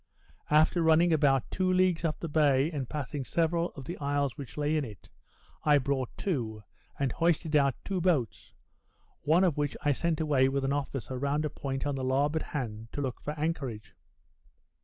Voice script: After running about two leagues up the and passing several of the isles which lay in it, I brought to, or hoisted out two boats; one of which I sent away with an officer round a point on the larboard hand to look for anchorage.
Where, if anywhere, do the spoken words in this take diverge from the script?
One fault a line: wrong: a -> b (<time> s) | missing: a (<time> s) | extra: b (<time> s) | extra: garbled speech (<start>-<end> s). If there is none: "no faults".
extra: bay (2.3 s)
wrong: or -> and (7.0 s)